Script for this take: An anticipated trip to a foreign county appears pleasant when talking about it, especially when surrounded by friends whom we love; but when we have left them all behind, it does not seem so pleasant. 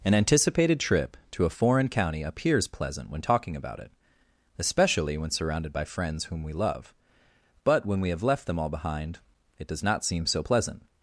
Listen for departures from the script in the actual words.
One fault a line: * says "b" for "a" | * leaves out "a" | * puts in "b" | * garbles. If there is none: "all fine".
all fine